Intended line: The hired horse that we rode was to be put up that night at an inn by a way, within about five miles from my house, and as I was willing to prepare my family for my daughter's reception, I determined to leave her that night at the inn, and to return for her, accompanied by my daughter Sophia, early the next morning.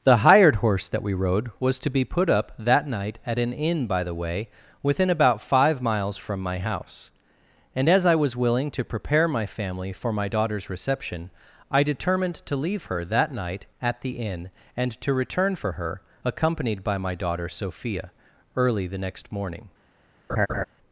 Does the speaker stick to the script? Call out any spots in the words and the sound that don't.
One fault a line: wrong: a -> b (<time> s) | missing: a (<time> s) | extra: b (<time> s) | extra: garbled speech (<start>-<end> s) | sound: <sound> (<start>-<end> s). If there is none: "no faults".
wrong: a -> the (4.0 s)
sound: laugh (20.3-20.6 s)